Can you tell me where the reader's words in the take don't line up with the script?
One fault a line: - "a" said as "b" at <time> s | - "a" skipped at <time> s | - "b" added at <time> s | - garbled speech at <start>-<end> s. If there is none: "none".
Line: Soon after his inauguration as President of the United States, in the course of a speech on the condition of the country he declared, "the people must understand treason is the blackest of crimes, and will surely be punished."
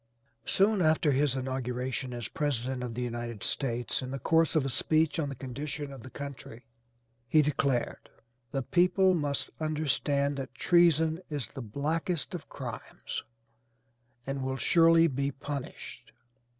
- "that" added at 10.4 s